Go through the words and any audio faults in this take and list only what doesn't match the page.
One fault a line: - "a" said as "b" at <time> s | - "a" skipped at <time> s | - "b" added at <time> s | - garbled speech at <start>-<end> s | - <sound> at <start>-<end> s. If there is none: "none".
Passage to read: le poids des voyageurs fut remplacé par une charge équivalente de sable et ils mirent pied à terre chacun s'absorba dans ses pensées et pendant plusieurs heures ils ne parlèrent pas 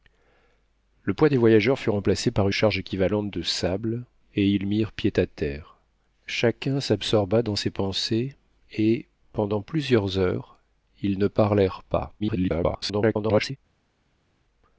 - "une" skipped at 2.5 s
- garbled speech at 12.2-13.6 s